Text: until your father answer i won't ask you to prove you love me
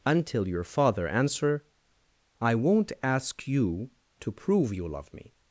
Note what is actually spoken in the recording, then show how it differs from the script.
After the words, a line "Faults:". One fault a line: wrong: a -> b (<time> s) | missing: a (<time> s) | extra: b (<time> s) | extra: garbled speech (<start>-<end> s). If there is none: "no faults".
until your father answer i won't ask you to prove you love me
Faults:
no faults